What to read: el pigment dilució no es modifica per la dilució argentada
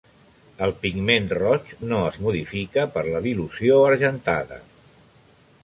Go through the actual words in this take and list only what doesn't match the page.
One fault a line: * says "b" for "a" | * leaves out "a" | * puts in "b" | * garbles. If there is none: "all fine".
* says "roig" for "dilució"